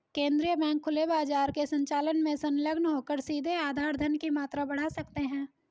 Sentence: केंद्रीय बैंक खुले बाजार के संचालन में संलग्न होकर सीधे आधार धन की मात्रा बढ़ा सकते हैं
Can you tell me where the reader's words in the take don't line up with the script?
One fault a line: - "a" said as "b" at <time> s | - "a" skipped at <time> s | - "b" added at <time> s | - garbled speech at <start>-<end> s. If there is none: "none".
none